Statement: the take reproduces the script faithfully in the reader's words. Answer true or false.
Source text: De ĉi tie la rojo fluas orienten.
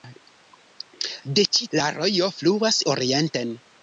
false